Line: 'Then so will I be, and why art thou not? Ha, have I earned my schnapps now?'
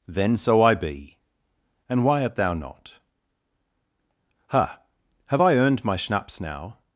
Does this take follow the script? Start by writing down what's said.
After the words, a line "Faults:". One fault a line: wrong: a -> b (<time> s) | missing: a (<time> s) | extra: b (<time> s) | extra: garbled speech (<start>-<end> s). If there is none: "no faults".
'Then so I be, and why art thou not? Ha, have I earned my schnapps now?'
Faults:
missing: will (0.6 s)